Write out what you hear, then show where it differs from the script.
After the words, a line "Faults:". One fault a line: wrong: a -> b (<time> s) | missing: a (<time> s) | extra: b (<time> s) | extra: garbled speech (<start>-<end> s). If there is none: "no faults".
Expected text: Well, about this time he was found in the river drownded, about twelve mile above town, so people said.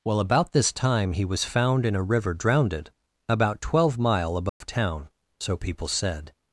Well, about this time he was found in a river drownded, about twelve mile above town, so people said.
Faults:
wrong: the -> a (1.9 s)